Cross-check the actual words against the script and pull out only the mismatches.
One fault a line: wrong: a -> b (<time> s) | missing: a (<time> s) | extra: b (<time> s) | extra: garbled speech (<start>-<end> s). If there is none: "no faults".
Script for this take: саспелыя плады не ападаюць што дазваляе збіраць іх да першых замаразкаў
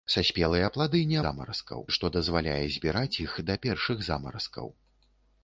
wrong: ападаюць -> замаразкаў (1.2 s)